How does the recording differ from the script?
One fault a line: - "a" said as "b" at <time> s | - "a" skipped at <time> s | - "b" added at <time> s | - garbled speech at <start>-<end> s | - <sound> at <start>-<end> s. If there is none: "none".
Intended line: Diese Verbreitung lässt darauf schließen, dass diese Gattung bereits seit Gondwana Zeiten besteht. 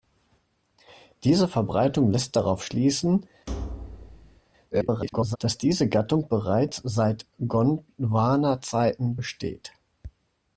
- thud at 3.5-4.4 s
- garbled speech at 4.7-5.4 s